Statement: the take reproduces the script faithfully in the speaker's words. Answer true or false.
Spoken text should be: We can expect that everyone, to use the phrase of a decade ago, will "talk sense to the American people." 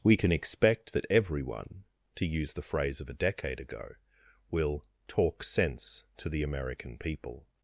true